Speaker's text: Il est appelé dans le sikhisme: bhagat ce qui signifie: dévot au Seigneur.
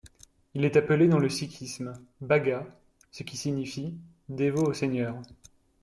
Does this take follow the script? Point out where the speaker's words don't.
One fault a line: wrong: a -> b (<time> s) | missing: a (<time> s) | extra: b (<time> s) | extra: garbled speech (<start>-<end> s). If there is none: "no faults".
no faults